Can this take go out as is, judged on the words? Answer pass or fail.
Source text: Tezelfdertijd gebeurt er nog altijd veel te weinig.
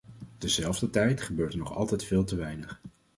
pass